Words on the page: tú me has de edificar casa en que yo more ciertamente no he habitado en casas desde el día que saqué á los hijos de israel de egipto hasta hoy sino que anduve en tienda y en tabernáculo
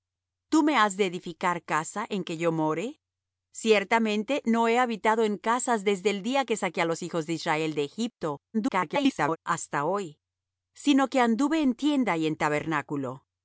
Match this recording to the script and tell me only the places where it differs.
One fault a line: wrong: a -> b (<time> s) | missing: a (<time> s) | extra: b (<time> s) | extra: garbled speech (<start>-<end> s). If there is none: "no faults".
extra: garbled speech (8.5-9.4 s)